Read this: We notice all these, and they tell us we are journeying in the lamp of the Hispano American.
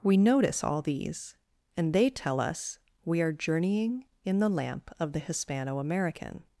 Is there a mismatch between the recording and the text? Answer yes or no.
no